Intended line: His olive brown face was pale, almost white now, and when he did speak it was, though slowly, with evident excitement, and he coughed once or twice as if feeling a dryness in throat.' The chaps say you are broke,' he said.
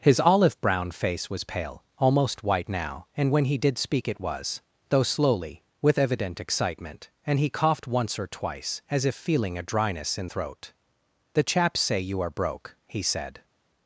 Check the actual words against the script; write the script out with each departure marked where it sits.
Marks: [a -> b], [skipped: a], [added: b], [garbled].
His olive brown face was pale, almost white now, and when he did speak it was, though slowly, with evident excitement, and he coughed once or twice as if feeling a dryness in throat.' The chaps say you are broke,' he said.